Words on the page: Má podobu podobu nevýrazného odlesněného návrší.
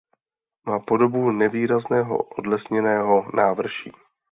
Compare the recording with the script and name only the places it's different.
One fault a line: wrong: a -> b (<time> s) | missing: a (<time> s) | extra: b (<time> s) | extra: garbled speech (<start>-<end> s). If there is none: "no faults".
missing: podobu (1.3 s)